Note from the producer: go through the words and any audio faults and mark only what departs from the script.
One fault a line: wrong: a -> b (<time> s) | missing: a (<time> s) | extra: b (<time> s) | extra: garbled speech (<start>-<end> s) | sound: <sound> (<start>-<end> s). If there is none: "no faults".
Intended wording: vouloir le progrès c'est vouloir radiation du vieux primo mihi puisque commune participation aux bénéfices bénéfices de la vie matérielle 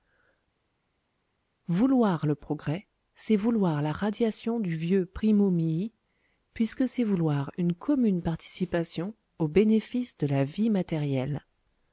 extra: la (3.8 s)
extra: c'est vouloir une (6.9 s)
missing: bénéfices (10.2 s)